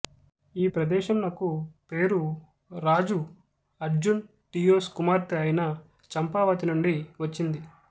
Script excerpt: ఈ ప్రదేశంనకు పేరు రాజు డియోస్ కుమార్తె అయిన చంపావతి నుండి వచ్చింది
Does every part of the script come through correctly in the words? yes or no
no